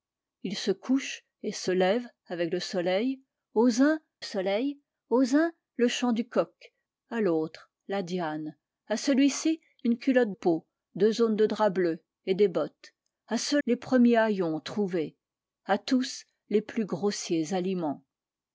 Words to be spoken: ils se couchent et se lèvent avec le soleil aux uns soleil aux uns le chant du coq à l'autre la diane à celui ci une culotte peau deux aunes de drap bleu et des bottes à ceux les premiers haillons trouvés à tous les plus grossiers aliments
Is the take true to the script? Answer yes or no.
yes